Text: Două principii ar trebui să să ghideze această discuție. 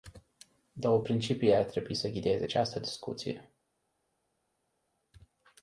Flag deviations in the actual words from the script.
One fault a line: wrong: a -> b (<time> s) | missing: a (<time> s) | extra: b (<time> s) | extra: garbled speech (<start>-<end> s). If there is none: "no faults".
missing: să (2.1 s)